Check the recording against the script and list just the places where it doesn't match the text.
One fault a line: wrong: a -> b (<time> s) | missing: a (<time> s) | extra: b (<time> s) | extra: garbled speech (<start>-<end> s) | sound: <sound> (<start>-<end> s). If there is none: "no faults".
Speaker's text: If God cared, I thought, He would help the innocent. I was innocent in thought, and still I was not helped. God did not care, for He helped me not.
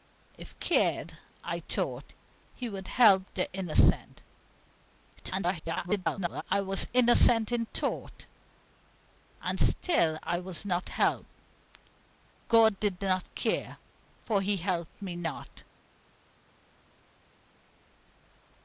missing: God (0.6 s)
extra: garbled speech (5.1-6.4 s)